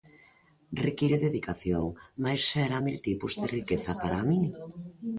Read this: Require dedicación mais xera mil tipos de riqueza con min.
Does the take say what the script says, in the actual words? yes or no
no